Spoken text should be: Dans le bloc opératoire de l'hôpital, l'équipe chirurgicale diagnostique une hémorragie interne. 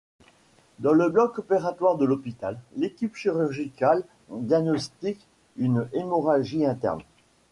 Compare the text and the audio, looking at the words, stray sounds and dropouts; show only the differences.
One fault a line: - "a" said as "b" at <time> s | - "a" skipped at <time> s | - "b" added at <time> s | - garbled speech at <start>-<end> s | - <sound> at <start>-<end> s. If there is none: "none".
none